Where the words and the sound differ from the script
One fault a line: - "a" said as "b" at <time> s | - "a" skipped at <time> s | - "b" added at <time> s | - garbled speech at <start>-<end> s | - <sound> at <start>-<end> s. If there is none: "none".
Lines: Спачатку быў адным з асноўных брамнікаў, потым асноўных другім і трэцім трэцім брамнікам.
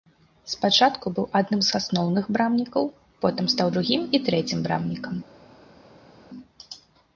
- "асноўных" said as "стаў" at 3.6 s
- "трэцім" skipped at 4.6 s